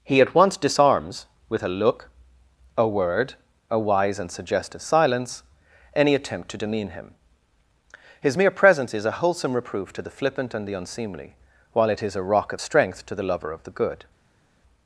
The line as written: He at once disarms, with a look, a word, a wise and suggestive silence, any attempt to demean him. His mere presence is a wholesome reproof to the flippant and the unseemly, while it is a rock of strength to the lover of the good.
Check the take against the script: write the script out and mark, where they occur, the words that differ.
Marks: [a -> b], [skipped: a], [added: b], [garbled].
He at once disarms, with a look, a word, a wise and suggestive silence, any attempt to demean him. His mere presence is a wholesome reproof to the flippant and the unseemly, while it is a rock of strength to the lover of the good.